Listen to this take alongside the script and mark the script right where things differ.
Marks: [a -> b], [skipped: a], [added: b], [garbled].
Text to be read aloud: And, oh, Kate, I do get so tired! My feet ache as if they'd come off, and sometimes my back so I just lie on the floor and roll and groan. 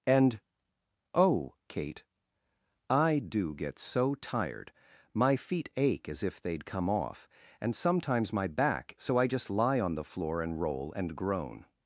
And, oh, Kate, I do get so tired! My feet ache as if they'd come off, and sometimes my back so I just lie on the floor and roll and groan.